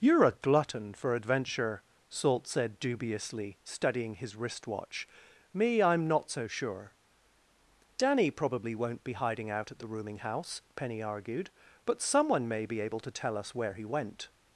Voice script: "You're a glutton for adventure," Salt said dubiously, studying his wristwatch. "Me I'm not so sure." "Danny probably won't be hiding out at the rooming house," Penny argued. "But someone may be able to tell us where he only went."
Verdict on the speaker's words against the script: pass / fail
fail